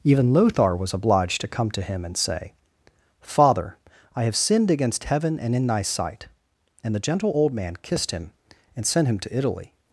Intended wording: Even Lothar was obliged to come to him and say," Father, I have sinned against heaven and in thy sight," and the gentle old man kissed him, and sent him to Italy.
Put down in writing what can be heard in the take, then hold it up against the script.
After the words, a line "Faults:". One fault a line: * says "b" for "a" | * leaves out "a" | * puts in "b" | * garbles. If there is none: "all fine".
Even Lothar was obliged to come to him and say," Father, I have sinned against heaven and in thy sight," and the gentle old man kissed him, and sent him to Italy.
Faults:
all fine